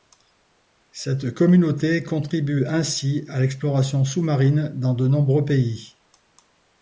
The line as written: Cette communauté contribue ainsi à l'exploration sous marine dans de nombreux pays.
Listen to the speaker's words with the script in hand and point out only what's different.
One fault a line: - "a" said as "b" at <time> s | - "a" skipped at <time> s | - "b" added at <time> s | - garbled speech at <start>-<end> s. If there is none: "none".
none